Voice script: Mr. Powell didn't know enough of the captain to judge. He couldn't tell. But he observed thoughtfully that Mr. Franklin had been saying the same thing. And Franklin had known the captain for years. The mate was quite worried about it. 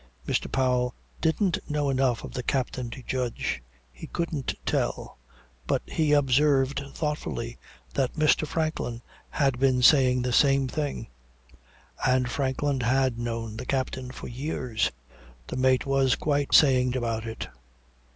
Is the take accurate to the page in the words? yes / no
no